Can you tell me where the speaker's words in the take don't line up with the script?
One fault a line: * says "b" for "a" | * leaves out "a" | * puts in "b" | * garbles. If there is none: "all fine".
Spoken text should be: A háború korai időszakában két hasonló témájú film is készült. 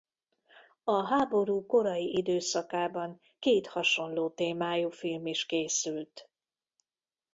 all fine